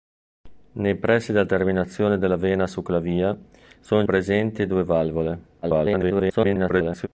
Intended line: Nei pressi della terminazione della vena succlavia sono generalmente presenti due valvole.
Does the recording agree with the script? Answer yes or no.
no